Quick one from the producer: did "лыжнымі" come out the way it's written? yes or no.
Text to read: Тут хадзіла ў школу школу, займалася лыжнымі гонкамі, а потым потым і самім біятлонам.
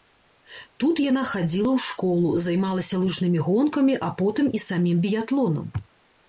yes